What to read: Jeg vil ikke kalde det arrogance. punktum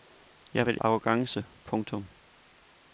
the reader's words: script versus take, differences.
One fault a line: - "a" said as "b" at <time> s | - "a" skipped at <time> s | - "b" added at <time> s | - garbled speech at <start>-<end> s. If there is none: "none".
- "ikke kalde det" skipped at 0.8 s